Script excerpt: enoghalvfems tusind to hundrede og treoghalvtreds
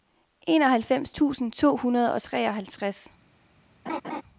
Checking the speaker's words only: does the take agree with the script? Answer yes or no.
yes